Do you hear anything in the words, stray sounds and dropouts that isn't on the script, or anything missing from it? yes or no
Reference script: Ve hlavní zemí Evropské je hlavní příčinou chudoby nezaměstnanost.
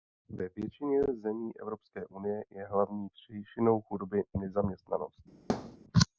yes